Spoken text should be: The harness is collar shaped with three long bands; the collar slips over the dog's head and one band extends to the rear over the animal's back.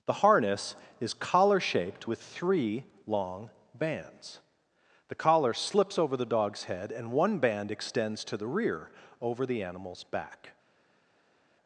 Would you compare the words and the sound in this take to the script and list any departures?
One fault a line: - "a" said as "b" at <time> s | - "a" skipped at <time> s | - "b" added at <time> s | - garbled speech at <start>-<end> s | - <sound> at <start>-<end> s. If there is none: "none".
none